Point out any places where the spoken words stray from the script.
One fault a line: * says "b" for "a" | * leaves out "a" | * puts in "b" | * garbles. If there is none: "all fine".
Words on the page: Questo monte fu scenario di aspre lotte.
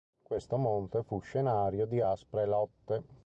all fine